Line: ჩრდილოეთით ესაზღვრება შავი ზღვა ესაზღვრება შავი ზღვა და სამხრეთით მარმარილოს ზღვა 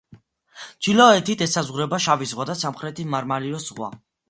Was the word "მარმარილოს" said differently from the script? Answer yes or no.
no